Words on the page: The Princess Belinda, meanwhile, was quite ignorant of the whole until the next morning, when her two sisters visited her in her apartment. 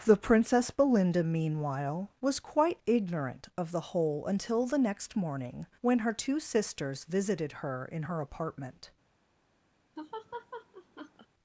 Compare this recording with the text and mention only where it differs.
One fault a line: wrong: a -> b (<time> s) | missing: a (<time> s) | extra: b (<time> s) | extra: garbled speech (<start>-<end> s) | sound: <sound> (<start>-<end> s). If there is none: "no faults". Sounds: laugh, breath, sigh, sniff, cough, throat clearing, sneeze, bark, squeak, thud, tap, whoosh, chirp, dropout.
sound: laugh (10.0-11.3 s)